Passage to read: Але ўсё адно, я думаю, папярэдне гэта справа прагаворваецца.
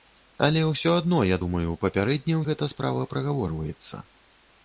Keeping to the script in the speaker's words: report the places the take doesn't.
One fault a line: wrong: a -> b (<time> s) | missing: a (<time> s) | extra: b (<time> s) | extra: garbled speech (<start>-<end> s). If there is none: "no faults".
no faults